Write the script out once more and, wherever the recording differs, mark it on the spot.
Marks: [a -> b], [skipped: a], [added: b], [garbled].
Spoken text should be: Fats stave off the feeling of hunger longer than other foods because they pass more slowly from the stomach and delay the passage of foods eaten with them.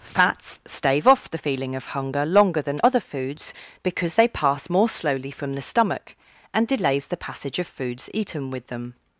Fats stave off the feeling of hunger longer than other foods because they pass more slowly from the stomach and [delay -> delays] the passage of foods eaten with them.